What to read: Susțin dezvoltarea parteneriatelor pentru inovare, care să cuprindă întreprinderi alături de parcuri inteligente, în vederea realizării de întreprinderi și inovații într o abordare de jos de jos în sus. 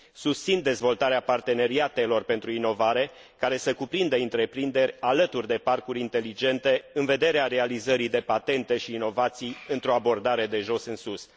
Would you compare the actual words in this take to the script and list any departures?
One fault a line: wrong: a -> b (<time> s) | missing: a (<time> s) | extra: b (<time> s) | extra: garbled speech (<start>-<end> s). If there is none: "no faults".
wrong: întreprinderi -> patente (8.2 s)
missing: de jos (10.8 s)